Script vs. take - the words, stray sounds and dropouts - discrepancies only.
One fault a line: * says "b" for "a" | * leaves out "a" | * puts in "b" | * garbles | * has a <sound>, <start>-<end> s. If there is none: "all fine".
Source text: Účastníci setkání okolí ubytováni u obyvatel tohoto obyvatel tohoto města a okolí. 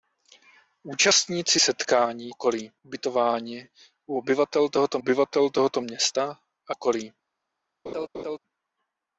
* has a laugh, 7.9-8.4 s